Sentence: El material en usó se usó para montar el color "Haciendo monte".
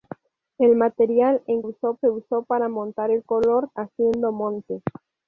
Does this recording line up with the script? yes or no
yes